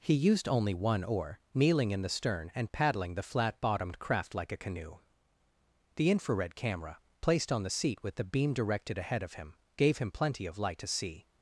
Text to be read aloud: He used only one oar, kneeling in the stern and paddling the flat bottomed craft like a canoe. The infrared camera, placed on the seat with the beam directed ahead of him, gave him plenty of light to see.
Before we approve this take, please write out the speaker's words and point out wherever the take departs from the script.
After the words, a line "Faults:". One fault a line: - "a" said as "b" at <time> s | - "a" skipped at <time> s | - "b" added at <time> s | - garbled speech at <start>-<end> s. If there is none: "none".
He used only one oar, kneeling in the stern and paddling the flat bottomed craft like a canoe. The infrared camera, placed on the seat with the beam directed ahead of him, gave him plenty of light to see.
Faults:
none